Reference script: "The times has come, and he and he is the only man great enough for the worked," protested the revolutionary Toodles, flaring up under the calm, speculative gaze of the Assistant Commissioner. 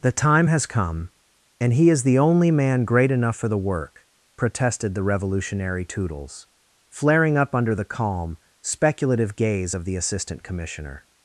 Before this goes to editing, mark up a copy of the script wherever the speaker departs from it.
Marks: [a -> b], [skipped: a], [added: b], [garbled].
"The [times -> time] has come, and he [skipped: and he] is the only man great enough for the [worked," -> work] protested the revolutionary Toodles, flaring up under the calm, speculative gaze of the Assistant Commissioner.